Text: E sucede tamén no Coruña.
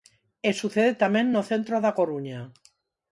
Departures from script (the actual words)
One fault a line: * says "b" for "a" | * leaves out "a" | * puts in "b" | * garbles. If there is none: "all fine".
* puts in "centro da"